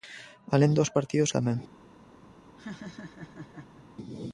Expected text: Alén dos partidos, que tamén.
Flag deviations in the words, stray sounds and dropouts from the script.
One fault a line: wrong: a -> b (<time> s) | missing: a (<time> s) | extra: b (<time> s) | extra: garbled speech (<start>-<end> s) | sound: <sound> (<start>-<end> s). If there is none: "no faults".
missing: que (1.3 s)
sound: laugh (2.6-3.9 s)